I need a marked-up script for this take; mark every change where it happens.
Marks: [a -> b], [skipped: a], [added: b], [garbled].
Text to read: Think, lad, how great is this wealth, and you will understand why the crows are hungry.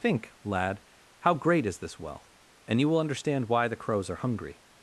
Think, lad, how great is this wealth, and you will understand why the crows are hungry.